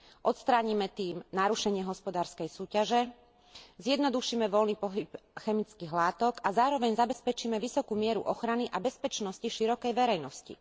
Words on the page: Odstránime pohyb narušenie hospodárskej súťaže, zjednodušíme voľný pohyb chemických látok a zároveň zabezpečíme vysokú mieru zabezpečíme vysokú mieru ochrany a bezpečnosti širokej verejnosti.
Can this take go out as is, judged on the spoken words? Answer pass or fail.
fail